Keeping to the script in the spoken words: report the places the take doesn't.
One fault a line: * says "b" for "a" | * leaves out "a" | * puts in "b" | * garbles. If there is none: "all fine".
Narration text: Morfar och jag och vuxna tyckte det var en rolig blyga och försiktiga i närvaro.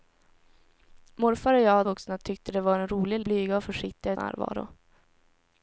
all fine